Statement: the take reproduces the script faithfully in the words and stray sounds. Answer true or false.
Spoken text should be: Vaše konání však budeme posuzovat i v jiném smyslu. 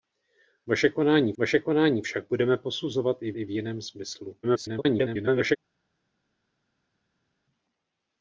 false